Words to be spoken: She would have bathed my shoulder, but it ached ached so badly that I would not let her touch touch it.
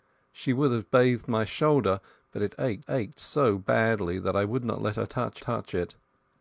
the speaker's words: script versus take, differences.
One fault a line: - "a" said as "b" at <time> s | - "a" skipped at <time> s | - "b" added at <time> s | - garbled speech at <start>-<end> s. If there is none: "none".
none